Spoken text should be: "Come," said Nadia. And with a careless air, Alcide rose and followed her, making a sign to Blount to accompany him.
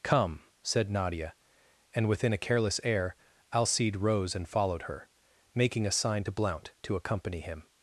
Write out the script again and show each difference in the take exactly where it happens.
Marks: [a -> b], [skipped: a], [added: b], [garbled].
"Come," said Nadia. And [with -> within] a careless air, Alcide rose and followed her, making a sign to Blount to accompany him.